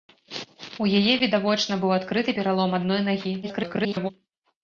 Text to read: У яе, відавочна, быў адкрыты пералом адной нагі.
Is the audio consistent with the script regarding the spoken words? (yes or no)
no